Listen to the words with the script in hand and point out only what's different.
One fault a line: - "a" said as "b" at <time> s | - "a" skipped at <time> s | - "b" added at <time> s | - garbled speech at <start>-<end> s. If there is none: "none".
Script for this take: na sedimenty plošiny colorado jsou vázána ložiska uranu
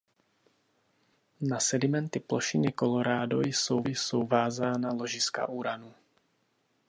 - "jsou" added at 3.8 s